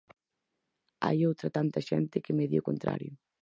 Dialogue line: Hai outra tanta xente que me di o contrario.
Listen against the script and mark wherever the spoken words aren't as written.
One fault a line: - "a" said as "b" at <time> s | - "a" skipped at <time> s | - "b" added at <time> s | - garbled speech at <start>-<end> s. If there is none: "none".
none